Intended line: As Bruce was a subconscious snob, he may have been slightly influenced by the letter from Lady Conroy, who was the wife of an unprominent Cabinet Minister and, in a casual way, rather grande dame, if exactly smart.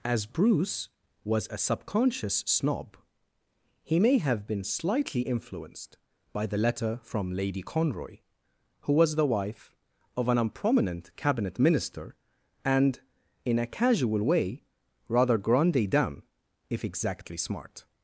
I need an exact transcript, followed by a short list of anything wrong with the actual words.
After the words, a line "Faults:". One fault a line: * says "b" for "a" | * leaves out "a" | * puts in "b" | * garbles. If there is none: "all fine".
As Bruce was a subconscious snob, he may have been slightly influenced by the letter from Lady Conroy, who was the wife of an unprominent Cabinet Minister and, in a casual way, rather grande dame, if exactly smart.
Faults:
all fine